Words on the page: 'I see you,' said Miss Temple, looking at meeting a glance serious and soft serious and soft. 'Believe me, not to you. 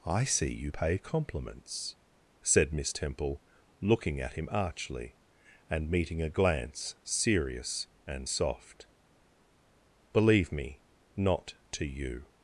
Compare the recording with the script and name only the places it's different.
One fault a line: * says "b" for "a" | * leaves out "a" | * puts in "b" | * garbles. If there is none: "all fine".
* puts in "pay compliments"
* puts in "him archly and"
* leaves out "serious and soft"